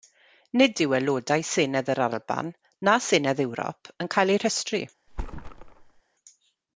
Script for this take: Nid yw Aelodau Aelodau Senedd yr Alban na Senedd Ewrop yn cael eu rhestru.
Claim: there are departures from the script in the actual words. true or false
true